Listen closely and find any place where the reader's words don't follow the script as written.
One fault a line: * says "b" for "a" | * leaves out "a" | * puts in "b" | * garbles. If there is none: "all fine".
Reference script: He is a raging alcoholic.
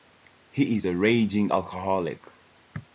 all fine